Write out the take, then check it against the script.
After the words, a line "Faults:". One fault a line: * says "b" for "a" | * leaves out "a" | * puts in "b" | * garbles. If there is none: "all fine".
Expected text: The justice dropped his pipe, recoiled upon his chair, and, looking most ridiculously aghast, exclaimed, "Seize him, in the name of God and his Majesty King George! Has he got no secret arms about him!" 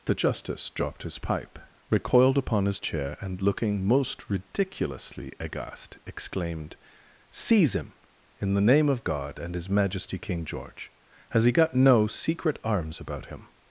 The justice dropped his pipe, recoiled upon his chair, and, looking most ridiculously aghast, exclaimed, "Seize him, in the name of God and his Majesty King George! Has he got no secret arms about him!"
Faults:
all fine